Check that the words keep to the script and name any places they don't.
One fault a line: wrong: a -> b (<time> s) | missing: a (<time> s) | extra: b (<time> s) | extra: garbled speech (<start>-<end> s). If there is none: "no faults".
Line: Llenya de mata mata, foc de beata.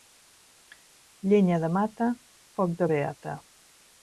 missing: mata (2.1 s)